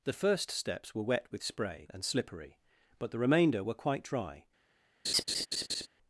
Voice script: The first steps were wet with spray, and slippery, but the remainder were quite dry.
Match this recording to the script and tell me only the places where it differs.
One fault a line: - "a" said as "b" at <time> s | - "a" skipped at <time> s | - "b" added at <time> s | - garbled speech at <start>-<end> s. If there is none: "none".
none